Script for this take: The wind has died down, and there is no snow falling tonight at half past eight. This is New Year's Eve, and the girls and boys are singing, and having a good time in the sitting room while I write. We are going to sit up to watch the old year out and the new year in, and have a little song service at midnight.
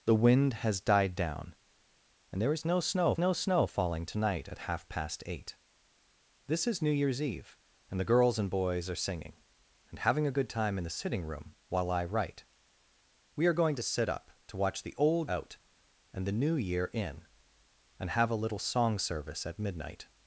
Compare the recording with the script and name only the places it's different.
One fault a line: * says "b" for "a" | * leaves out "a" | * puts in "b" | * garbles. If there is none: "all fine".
* puts in "no snow"
* leaves out "year"